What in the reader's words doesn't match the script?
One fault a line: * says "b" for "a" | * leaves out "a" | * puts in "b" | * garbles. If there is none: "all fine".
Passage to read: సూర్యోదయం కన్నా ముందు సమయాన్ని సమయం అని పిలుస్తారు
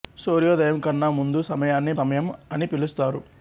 all fine